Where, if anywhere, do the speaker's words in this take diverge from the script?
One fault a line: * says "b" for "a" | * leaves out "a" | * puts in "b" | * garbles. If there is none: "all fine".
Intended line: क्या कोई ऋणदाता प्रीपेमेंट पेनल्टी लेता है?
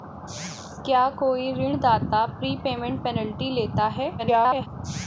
* garbles